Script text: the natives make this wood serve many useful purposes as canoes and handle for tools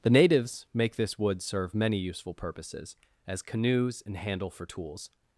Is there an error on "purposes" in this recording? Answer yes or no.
no